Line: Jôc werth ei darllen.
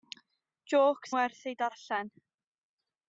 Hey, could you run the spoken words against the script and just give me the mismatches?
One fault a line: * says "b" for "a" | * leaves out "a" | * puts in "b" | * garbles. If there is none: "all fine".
all fine